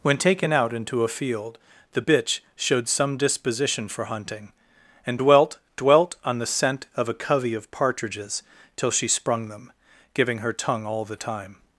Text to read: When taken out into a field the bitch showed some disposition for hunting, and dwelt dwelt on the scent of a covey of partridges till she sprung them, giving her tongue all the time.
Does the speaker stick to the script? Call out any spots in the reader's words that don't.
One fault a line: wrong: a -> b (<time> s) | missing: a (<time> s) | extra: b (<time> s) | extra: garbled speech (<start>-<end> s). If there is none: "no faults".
no faults